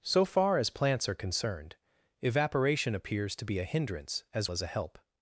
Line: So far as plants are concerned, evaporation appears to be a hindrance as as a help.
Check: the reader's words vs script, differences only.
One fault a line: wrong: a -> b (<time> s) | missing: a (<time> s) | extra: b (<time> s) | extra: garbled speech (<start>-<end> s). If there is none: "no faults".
no faults